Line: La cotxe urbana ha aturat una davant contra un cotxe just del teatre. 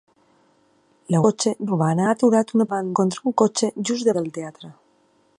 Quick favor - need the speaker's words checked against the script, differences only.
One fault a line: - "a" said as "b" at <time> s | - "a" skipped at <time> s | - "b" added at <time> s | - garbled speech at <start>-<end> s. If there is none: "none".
none